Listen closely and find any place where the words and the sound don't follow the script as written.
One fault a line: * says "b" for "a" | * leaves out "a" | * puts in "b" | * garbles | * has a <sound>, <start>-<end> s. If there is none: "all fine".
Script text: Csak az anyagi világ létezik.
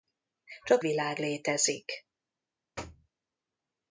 * leaves out "az anyagi"
* has a thud, 2.8-3.1 s